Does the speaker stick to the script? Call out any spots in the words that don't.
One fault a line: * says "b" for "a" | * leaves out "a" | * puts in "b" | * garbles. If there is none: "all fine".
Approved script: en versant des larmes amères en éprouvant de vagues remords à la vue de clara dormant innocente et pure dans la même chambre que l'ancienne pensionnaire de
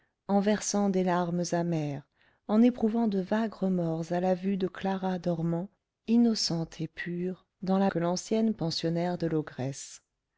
* leaves out "même chambre"